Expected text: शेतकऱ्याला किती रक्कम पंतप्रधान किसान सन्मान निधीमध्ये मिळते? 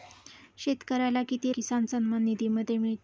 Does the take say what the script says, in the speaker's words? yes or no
no